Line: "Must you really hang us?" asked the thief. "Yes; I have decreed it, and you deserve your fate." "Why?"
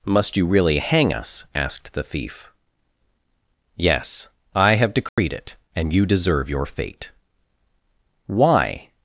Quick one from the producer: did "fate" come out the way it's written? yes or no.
yes